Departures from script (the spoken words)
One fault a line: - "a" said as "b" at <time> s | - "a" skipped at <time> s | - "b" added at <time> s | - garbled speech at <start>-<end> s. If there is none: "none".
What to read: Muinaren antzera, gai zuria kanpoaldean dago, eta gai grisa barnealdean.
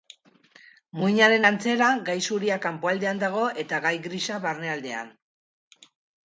none